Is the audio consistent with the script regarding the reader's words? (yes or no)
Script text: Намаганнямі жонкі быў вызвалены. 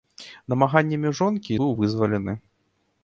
yes